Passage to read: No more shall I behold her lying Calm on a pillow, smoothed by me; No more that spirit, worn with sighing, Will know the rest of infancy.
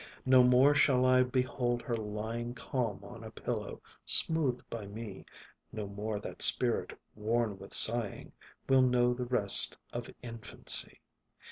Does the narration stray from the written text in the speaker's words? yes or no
no